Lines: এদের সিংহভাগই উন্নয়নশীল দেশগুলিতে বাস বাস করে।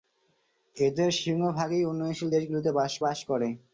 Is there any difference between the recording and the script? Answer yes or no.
no